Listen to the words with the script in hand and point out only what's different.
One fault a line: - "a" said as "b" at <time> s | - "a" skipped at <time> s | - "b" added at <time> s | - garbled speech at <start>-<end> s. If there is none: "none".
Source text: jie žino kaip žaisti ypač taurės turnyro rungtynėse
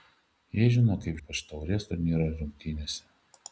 - "žaisti" skipped at 1.2 s